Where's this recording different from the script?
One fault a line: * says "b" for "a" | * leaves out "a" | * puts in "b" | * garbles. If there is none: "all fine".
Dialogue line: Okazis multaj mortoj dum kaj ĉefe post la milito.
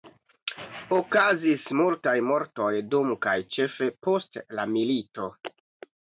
all fine